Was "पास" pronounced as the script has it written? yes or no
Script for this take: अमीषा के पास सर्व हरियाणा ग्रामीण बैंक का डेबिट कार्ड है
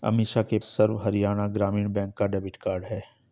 no